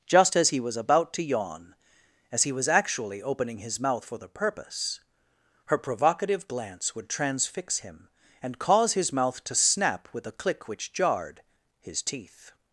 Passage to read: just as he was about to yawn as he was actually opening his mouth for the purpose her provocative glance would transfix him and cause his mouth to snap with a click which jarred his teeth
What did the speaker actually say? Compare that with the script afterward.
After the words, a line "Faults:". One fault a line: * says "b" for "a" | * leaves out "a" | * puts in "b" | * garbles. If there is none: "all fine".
just as he was about to yawn as he was actually opening his mouth for the purpose her provocative glance would transfix him and cause his mouth to snap with a click which jarred his teeth
Faults:
all fine